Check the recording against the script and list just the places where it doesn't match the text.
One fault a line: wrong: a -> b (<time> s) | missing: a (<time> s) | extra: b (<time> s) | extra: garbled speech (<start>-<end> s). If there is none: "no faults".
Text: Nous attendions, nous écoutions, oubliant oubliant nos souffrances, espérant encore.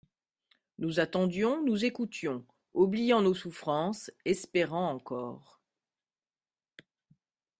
missing: oubliant (3.2 s)